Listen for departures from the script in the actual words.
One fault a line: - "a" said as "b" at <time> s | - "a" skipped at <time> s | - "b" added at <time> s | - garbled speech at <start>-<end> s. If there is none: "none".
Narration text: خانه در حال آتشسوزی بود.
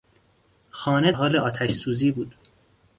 - "در" skipped at 1.1 s